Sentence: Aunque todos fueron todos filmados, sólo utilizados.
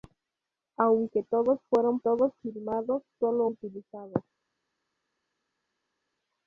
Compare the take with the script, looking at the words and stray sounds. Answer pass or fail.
pass